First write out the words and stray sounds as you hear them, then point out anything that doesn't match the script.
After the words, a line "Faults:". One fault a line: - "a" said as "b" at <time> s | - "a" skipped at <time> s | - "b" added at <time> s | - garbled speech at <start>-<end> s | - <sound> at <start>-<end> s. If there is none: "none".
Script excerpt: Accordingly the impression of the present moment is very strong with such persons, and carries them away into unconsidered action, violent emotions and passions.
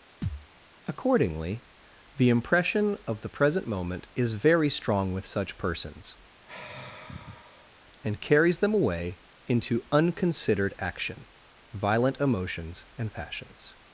Accordingly the impression of the present moment is very strong with such persons, and carries them away into unconsidered action, violent emotions and passions.
Faults:
- thud at 0.2-0.5 s
- sigh at 6.5-7.7 s